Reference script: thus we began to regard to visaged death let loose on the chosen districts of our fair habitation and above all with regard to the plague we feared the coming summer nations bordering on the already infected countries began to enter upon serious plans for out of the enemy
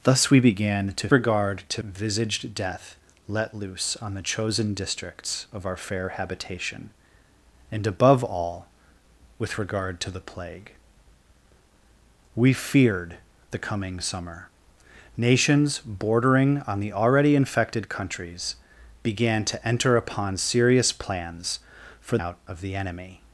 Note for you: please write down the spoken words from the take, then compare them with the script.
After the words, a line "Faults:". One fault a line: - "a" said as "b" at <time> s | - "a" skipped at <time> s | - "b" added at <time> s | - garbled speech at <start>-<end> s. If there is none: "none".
thus we began to regard to visaged death let loose on the chosen districts of our fair habitation and above all with regard to the plague we feared the coming summer nations bordering on the already infected countries began to enter upon serious plans for out of the enemy
Faults:
none